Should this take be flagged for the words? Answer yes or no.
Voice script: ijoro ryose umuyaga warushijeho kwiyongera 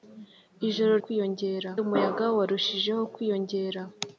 yes